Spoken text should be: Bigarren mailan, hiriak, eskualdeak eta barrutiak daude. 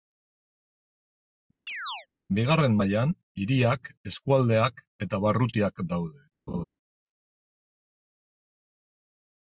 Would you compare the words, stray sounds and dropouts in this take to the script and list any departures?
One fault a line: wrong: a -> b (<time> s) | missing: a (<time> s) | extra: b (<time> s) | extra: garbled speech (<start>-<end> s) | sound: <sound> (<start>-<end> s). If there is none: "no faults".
sound: chirp (1.7-2.1 s)
sound: laugh (6.5-6.6 s)